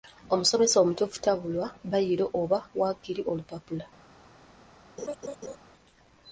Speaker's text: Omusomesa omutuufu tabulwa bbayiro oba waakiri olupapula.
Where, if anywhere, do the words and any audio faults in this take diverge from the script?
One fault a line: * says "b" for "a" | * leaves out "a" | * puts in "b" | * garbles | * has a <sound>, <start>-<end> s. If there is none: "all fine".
* has a laugh, 5.0-5.6 s